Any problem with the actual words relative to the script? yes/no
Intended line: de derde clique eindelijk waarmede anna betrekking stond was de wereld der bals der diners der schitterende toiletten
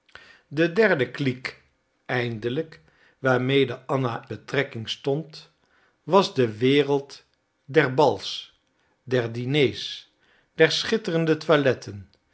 no